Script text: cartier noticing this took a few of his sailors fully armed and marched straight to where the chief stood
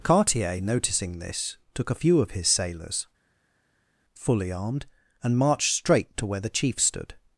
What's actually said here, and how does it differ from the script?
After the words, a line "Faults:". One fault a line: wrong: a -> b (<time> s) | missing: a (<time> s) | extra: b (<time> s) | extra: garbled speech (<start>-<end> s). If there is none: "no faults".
cartier noticing this took a few of his sailors fully armed and marched straight to where the chief stood
Faults:
no faults